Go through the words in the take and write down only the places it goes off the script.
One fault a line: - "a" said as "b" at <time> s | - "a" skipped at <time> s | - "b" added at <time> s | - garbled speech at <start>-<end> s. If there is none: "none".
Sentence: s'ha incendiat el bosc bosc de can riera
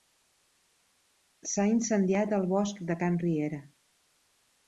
- "bosc" skipped at 2.8 s